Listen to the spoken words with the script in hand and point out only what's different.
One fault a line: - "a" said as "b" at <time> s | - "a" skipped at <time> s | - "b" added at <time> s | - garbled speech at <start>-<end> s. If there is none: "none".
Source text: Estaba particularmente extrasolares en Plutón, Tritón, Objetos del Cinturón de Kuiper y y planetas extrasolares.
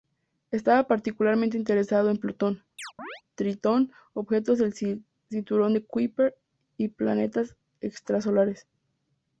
- "extrasolares" said as "interesado" at 1.6 s
- "y" skipped at 6.9 s